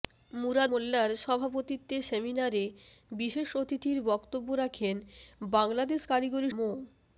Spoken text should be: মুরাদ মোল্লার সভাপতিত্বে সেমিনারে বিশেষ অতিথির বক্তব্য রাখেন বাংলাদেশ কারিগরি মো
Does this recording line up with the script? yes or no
yes